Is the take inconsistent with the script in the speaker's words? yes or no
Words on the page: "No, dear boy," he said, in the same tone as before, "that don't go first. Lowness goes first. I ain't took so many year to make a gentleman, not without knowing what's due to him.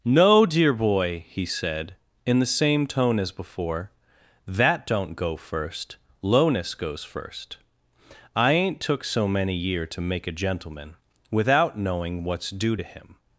yes